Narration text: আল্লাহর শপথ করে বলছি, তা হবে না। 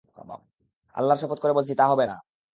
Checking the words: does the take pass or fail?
pass